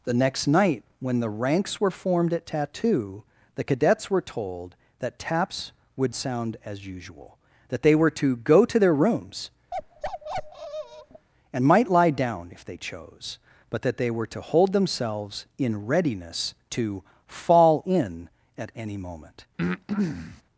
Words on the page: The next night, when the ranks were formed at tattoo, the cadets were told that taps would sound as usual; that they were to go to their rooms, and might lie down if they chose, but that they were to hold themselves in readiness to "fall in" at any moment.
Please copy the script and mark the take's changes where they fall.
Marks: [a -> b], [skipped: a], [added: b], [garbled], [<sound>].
The next night, when the ranks were formed at tattoo, the cadets were told that taps would sound as usual; that they were to go to their rooms, [bark] and might lie down if they chose, but that they were to hold themselves in readiness to "fall in" at any moment. [breath]